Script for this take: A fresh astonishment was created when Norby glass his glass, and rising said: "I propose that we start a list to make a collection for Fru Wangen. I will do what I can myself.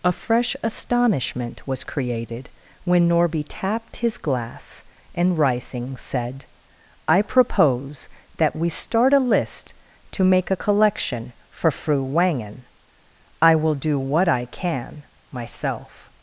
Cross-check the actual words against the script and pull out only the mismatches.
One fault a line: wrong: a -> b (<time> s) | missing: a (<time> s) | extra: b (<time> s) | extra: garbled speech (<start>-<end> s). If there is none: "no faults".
wrong: glass -> tapped (3.5 s)